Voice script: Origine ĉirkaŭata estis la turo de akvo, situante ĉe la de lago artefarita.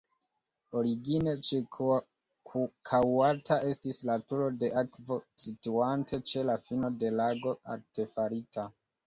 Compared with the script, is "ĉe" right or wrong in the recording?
right